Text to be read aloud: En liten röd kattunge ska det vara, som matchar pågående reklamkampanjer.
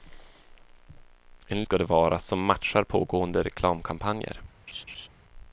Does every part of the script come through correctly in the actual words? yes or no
no